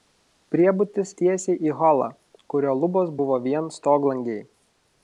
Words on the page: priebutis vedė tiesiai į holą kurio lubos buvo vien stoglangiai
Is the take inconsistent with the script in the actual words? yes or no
yes